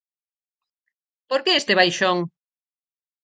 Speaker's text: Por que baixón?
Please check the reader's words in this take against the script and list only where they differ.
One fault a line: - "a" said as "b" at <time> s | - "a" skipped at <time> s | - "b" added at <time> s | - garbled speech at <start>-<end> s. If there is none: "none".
- "este" added at 1.6 s